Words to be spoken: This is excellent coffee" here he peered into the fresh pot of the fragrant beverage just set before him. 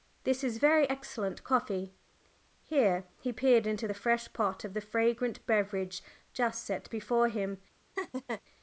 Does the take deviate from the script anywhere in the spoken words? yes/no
yes